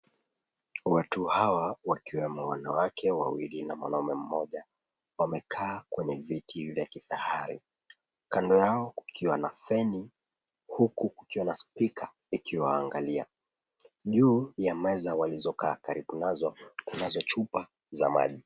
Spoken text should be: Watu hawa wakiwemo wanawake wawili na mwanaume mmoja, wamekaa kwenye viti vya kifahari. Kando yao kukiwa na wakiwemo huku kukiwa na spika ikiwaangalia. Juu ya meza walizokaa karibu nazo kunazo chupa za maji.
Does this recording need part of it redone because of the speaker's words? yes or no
yes